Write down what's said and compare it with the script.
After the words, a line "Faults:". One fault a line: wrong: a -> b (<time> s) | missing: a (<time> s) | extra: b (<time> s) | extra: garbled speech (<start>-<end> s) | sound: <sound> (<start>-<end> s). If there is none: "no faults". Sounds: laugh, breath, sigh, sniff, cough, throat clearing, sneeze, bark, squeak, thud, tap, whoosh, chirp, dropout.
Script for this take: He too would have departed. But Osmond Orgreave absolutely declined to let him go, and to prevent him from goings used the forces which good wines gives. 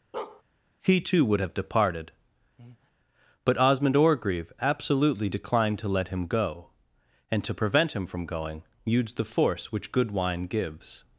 He too would have departed. But Osmond Orgreave absolutely declined to let him go, and to prevent him from going used the force which good wine gives.
Faults:
sound: bark (0.1-0.4 s)
sound: breath (2.6-2.9 s)
wrong: goings -> going (8.2 s)
wrong: forces -> force (9.2 s)
wrong: wines -> wine (10.1 s)